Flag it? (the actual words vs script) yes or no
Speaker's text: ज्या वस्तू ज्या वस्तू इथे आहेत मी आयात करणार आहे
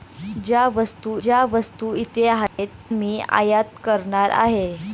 no